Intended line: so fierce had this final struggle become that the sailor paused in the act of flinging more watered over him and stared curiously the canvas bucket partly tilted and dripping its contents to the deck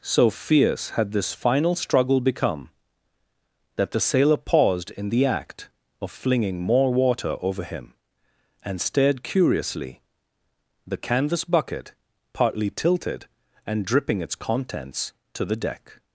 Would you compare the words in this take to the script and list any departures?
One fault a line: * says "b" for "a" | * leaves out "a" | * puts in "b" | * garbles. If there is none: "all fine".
* says "water" for "watered"